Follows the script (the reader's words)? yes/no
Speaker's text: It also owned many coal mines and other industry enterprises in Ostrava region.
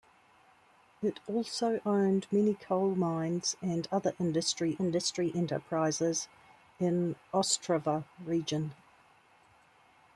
no